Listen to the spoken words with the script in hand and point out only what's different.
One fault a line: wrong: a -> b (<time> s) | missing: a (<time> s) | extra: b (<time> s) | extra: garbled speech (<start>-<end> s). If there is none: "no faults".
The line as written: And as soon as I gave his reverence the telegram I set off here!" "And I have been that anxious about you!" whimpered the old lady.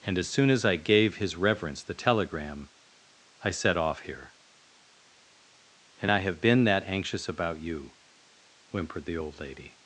no faults